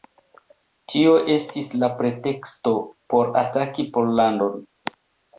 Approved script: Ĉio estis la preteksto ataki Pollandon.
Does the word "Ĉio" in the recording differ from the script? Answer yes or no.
yes